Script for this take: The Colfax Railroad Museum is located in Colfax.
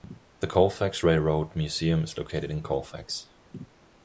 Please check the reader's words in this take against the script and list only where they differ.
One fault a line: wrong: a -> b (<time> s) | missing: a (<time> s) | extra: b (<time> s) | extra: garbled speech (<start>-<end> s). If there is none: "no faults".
no faults